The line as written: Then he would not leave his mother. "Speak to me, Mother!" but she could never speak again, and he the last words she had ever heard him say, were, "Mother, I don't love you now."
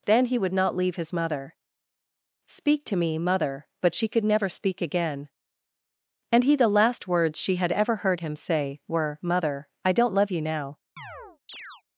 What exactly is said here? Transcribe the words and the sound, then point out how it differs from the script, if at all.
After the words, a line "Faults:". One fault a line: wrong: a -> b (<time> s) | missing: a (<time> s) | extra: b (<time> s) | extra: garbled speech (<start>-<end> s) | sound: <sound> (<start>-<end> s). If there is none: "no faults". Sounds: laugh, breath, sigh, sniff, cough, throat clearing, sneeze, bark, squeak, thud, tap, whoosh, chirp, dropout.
Then he would not leave his mother. "Speak to me, Mother!" but she could never speak again, and he the last words she had ever heard him say, were, "Mother, I don't love you now."
Faults:
sound: chirp (11.0-11.8 s)